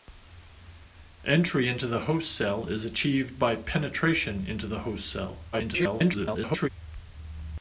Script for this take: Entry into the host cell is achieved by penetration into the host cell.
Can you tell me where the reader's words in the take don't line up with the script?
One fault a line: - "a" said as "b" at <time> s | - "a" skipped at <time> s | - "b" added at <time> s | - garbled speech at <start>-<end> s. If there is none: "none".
- garbled speech at 5.5-6.7 s